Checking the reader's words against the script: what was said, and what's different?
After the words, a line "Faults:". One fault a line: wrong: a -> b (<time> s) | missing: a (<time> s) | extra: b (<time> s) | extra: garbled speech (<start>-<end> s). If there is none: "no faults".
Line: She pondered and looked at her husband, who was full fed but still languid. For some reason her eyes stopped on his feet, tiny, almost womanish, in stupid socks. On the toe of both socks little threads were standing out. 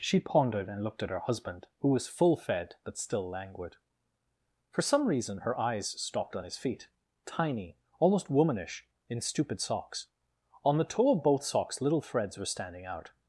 She pondered and looked at her husband, who was full fed but still languid. For some reason her eyes stopped on his feet, tiny, almost womanish, in stupid socks. On the toe of both socks little threads were standing out.
Faults:
no faults